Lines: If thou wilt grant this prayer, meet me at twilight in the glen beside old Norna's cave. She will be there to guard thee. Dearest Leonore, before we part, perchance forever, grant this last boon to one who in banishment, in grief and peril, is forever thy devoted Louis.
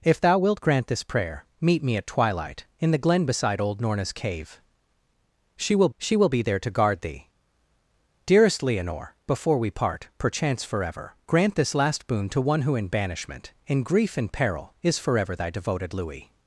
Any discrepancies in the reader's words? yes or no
yes